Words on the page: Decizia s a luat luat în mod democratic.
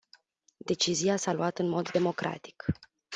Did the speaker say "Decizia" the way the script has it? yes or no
yes